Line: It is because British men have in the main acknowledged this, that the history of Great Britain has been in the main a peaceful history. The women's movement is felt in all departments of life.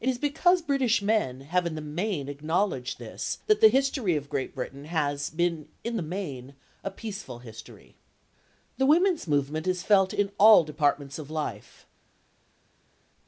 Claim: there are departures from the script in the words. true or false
false